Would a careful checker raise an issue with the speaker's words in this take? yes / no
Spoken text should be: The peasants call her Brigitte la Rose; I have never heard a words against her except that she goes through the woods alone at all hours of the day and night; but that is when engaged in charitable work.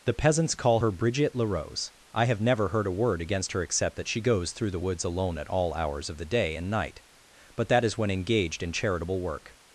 yes